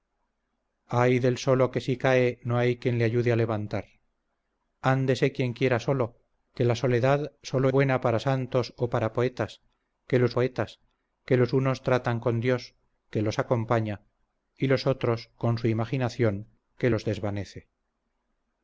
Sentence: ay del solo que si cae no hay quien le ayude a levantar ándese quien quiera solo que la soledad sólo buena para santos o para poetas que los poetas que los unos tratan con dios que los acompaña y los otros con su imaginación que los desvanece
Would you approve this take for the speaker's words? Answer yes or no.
yes